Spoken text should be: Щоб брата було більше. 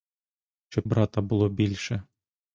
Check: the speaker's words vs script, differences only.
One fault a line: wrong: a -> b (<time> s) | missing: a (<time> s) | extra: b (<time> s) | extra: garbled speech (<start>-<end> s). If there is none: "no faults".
no faults